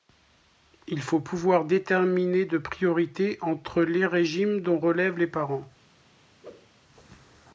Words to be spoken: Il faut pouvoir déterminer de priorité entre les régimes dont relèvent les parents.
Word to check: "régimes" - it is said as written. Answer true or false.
true